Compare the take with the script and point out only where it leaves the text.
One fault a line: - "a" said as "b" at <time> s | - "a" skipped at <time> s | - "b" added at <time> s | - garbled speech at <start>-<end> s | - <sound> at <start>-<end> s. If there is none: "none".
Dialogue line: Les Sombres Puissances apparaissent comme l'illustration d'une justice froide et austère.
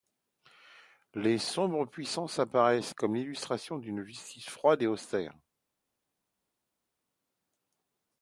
none